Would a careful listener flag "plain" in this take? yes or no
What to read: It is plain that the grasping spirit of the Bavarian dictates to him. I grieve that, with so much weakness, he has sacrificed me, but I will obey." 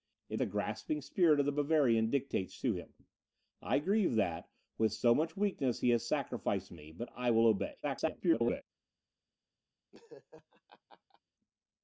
yes